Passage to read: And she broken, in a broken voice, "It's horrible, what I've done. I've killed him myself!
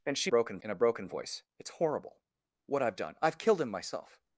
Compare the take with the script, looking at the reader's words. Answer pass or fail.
pass